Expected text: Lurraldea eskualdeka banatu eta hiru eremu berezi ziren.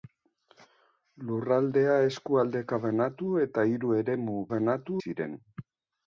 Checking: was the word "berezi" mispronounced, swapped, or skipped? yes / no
yes